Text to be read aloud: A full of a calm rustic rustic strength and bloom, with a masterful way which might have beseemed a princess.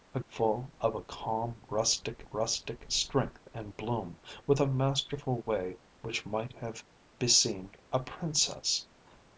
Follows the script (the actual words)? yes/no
yes